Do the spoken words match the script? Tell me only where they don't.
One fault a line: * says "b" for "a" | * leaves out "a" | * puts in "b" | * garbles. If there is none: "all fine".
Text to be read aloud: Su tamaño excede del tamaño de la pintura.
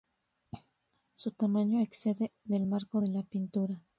* says "marco" for "tamaño"